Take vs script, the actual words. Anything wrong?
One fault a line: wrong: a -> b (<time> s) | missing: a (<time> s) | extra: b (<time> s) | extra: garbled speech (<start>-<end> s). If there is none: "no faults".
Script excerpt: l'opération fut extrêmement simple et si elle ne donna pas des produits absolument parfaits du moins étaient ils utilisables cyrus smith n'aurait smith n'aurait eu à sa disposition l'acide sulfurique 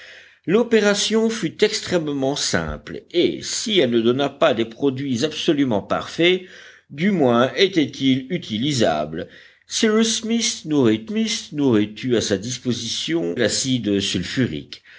no faults